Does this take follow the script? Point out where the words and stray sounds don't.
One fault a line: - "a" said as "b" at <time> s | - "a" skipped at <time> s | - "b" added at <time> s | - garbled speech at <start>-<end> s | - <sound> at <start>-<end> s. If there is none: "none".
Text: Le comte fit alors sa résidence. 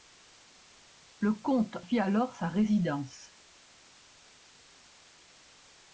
none